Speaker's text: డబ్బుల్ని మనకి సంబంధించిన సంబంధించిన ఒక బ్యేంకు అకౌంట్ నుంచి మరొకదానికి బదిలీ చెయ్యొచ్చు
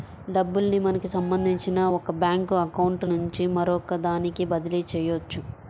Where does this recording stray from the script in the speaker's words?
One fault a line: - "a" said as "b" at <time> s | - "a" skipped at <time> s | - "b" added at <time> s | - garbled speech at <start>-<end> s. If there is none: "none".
- "సంబంధించిన" skipped at 1.8 s